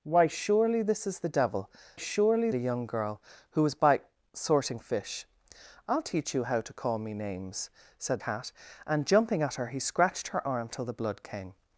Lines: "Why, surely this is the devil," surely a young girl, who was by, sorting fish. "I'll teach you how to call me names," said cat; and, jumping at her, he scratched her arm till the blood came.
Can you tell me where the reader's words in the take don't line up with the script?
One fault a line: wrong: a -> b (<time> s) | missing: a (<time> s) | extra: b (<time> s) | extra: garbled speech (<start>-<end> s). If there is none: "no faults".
no faults